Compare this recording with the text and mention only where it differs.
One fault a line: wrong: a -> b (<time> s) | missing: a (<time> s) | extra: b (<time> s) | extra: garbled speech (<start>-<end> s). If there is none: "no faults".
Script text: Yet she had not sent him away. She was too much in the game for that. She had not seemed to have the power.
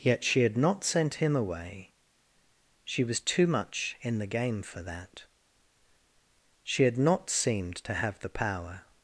no faults